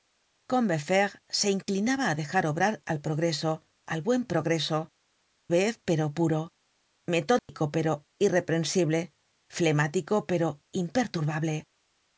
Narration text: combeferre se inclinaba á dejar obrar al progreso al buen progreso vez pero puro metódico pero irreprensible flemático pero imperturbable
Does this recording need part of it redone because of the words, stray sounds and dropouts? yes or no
yes